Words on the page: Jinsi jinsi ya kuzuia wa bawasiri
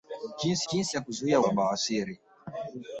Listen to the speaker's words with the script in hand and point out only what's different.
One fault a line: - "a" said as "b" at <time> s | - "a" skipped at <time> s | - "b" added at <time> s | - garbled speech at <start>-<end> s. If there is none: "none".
none